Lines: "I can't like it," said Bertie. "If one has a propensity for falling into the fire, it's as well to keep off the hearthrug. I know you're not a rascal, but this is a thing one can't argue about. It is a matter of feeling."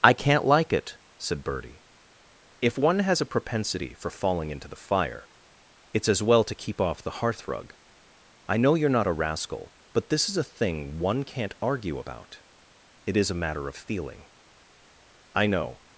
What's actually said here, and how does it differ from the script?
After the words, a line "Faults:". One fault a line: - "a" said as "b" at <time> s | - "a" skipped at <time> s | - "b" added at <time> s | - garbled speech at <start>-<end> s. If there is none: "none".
"I can't like it," said Bertie. "If one has a propensity for falling into the fire, it's as well to keep off the hearthrug. I know you're not a rascal, but this is a thing one can't argue about. It is a matter of feeling." "I know
Faults:
- "I know" added at 15.3 s